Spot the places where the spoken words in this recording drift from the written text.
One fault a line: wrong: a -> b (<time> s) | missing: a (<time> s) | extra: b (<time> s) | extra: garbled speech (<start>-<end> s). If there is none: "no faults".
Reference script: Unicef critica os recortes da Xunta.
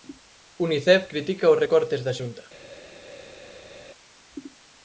no faults